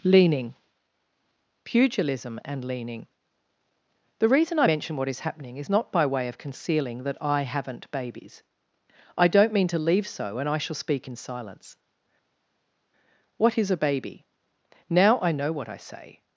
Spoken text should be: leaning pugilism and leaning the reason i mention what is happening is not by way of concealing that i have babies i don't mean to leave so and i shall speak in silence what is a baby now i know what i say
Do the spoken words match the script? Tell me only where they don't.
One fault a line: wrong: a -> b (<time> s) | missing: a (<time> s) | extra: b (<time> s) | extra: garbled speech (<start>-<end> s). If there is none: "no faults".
wrong: have -> haven't (7.4 s)